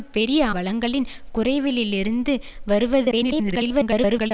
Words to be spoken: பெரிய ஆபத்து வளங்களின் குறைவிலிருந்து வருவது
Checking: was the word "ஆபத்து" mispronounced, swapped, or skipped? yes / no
yes